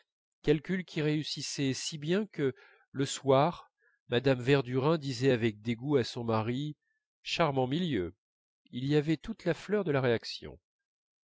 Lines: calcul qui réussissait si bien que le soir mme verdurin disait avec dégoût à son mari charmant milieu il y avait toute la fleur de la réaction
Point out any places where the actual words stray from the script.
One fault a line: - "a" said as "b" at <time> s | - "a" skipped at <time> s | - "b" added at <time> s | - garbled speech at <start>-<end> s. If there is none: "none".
none